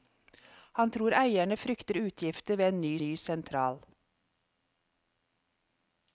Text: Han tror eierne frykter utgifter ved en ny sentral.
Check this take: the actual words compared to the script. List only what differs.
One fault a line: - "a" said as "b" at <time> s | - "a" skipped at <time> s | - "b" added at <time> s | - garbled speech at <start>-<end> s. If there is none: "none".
- "ny" added at 3.0 s